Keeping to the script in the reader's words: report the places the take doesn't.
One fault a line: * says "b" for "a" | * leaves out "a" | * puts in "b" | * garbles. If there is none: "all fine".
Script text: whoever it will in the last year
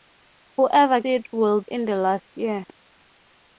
all fine